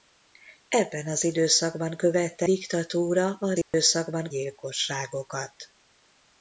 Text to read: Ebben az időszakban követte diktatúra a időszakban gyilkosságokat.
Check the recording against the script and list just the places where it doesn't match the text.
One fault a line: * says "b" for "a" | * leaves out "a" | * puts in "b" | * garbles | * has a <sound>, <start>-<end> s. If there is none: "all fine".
* has a dropout, 3.6-3.7 s